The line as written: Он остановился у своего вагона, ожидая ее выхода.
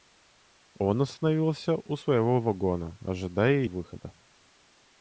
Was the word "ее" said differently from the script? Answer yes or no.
yes